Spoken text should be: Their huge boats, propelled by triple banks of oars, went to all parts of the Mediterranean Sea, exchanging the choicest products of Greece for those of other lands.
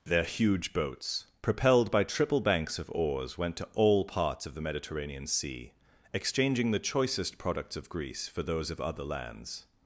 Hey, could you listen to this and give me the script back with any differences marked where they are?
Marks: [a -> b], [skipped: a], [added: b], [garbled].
Their huge boats, propelled by triple banks of oars, went to all parts of the Mediterranean Sea, exchanging the choicest products of Greece for those of other lands.